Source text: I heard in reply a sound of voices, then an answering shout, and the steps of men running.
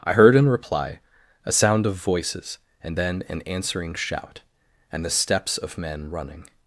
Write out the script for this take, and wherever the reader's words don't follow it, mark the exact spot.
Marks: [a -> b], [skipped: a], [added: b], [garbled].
I heard in reply a sound of voices, [added: and] then an answering shout, and the steps of men running.